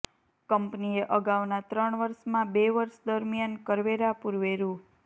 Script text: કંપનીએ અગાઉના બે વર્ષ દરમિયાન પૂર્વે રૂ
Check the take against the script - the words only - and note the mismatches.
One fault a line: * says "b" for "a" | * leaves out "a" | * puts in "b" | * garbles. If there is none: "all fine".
* puts in "ત્રણ વર્ષમાં"
* puts in "કરવેરા"